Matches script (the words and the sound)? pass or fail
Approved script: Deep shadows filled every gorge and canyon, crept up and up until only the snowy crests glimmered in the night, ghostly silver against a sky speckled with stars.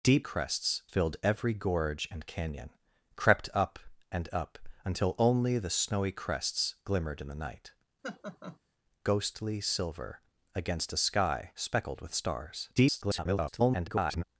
fail